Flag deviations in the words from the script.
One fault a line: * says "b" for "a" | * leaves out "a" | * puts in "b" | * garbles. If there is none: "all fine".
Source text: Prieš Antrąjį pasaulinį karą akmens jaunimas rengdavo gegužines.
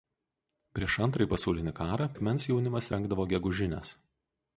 all fine